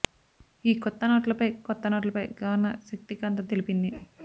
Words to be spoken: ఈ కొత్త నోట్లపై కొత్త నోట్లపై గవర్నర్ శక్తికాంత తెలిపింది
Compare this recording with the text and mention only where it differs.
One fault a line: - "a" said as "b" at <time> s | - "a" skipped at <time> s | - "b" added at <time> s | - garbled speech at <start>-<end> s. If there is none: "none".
none